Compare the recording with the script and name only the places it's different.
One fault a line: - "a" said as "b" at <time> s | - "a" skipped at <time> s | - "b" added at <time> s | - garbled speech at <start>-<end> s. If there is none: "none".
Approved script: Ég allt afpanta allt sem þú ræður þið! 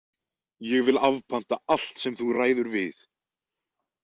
- "allt" said as "vil" at 0.9 s
- "þið" said as "við" at 2.8 s